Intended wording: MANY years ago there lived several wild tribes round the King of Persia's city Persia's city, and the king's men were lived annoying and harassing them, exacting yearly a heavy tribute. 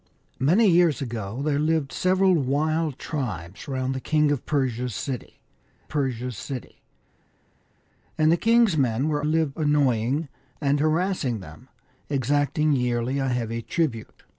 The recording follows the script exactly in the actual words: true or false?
true